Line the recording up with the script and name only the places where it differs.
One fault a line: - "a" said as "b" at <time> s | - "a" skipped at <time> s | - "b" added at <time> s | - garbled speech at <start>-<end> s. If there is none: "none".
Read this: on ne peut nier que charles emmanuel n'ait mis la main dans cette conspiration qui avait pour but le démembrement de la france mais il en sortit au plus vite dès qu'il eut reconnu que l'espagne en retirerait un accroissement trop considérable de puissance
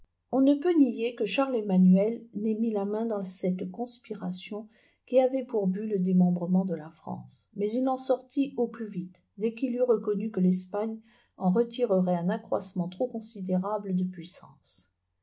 none